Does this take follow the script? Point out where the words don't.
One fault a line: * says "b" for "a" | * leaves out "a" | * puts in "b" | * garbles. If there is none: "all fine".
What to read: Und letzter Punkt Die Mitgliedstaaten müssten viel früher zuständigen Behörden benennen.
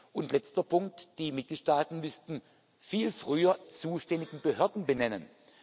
all fine